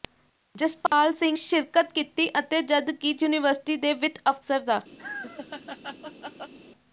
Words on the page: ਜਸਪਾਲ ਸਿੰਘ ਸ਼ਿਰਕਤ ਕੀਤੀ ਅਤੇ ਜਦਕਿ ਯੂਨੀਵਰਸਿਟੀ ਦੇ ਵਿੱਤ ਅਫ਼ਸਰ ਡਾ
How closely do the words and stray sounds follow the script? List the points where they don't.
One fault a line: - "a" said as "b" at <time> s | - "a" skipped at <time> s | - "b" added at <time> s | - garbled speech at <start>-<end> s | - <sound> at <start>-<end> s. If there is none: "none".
- dropout at 0.9-0.9 s
- laugh at 5.0-6.5 s